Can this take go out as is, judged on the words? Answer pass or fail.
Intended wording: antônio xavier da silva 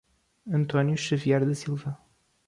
pass